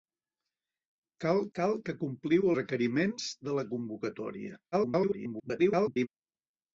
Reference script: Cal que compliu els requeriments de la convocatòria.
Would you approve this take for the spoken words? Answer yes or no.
no